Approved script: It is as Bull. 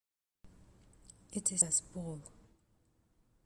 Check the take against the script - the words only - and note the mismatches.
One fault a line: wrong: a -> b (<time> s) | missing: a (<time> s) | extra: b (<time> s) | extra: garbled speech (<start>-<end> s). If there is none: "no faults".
no faults